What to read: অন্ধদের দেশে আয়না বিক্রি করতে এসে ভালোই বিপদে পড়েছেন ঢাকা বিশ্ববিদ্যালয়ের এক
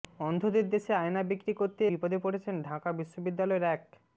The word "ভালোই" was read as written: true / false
false